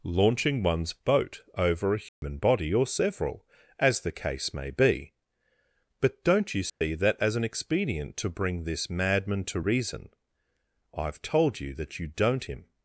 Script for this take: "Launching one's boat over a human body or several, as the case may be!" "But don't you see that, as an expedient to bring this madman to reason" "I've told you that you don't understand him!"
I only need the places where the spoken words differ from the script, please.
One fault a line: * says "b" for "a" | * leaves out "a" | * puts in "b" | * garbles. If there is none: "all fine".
* leaves out "understand"